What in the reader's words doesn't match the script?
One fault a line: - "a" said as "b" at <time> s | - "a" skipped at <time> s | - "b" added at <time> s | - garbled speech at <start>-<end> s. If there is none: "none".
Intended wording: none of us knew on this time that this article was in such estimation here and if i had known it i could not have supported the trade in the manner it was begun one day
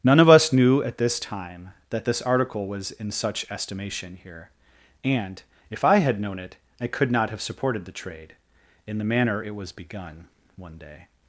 - "on" said as "at" at 0.8 s